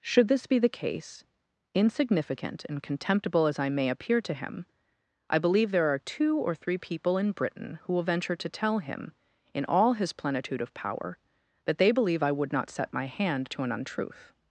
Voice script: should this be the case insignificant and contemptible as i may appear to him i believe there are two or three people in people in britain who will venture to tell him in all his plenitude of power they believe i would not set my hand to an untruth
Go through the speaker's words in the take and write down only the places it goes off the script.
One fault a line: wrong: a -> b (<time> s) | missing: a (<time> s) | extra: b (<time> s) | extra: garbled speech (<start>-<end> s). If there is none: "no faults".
missing: people in (7.3 s)
extra: that (11.7 s)